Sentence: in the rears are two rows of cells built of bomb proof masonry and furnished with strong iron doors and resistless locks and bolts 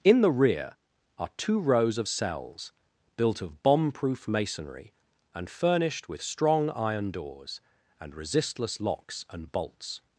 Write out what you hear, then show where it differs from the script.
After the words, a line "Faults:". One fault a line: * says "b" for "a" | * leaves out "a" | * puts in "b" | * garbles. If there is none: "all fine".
in the rear are two rows of cells built of bomb proof masonry and furnished with strong iron doors and resistless locks and bolts
Faults:
* says "rear" for "rears"